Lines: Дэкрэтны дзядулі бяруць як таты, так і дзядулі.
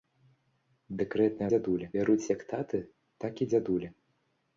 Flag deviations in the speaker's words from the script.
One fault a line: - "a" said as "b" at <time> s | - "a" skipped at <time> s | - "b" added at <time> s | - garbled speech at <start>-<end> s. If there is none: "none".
none